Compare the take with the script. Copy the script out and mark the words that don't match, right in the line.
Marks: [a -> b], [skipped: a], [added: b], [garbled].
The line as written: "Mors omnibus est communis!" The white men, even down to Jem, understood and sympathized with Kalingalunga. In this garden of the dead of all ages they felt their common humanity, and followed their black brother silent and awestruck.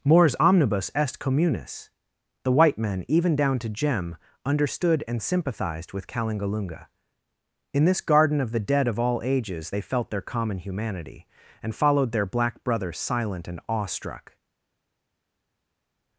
"Mors omnibus est communis!" The white men, even down to Jem, understood and sympathized with Kalingalunga. In this garden of the dead of all ages they felt their common humanity, and followed their black brother silent and awestruck.